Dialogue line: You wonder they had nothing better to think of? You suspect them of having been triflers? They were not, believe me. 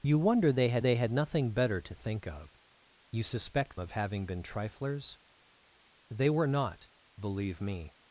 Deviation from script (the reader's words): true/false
true